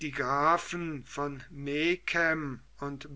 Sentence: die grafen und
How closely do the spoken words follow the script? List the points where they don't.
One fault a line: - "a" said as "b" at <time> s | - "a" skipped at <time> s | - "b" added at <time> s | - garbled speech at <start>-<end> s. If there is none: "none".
- "von megen" added at 1.1 s